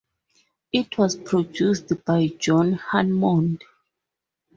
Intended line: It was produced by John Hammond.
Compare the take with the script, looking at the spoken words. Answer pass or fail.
pass